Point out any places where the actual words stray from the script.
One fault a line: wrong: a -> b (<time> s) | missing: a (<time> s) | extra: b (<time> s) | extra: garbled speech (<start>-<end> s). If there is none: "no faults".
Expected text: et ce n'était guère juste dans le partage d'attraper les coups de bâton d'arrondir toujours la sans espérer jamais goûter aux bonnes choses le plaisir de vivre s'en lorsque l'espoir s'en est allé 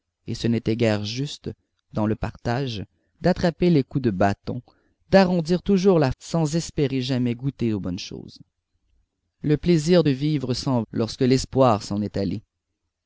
no faults